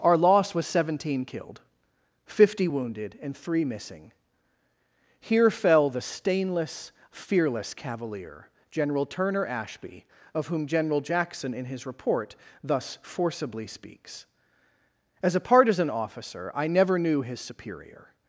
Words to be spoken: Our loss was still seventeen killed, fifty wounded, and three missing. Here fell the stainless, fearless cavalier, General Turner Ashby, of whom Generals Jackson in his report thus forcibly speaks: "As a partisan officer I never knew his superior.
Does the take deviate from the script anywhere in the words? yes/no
yes